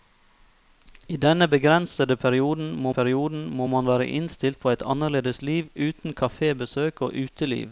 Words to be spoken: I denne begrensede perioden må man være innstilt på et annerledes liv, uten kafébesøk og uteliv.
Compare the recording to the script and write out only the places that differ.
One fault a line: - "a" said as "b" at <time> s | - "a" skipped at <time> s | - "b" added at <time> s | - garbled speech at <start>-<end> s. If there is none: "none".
- "perioden må" added at 2.9 s